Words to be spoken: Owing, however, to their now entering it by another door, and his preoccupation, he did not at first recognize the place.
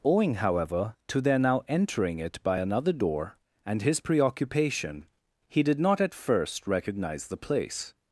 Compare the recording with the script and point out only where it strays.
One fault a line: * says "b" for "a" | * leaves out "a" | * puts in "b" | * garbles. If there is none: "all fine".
all fine